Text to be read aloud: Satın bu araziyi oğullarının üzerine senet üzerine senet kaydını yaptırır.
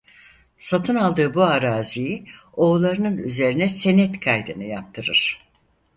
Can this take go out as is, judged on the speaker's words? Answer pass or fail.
fail